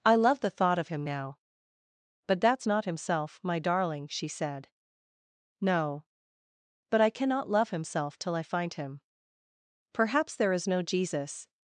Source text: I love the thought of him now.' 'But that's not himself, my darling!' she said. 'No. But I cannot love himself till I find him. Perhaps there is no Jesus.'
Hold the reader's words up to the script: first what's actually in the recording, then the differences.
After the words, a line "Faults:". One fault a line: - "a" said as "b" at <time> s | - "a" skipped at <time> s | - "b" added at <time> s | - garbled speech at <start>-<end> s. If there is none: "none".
I love the thought of him now.' 'But that's not himself, my darling!' she said. 'No. But I cannot love himself till I find him. Perhaps there is no Jesus.'
Faults:
none